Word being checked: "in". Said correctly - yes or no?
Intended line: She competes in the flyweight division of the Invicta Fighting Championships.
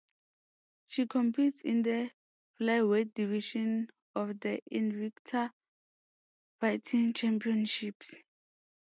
yes